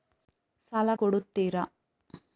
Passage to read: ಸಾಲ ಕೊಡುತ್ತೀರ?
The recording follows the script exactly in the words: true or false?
true